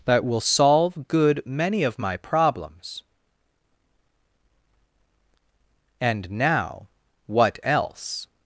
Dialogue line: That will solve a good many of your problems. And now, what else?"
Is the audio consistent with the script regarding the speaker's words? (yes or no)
no